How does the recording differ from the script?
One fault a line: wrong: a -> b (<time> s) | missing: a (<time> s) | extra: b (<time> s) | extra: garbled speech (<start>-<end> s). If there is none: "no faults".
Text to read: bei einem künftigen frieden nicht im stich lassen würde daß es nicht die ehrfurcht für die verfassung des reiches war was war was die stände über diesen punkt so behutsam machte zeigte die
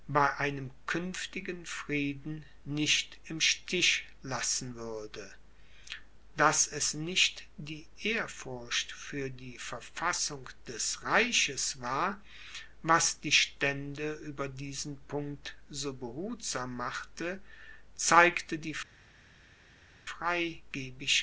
missing: war was (13.2 s)